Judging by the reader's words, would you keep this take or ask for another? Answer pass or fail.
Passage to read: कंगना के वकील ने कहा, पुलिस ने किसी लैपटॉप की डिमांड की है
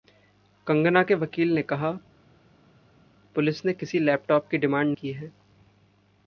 pass